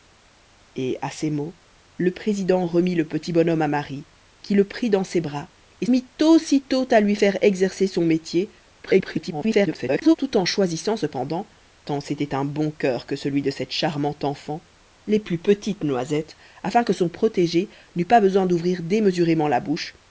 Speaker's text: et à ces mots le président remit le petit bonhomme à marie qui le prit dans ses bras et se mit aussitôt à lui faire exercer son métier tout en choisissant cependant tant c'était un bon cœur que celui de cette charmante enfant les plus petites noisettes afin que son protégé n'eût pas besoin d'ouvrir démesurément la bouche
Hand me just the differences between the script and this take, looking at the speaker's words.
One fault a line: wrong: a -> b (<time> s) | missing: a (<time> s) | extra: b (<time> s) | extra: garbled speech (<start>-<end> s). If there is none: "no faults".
missing: se (5.8 s)
extra: garbled speech (8.8-10.2 s)